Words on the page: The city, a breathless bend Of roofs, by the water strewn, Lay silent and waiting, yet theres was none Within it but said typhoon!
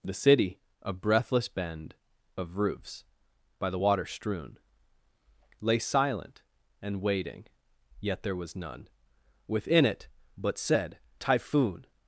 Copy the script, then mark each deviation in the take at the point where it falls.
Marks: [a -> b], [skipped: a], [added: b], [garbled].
The city, a breathless bend Of roofs, by the water strewn, Lay silent and waiting, yet [theres -> there] was none Within it but said typhoon!